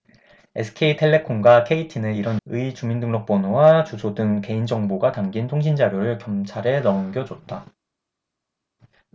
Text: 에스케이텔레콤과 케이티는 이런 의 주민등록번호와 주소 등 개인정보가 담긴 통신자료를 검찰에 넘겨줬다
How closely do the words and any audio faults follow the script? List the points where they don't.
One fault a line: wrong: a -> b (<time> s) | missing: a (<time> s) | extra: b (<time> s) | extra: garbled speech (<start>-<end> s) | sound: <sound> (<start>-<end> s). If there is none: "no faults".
no faults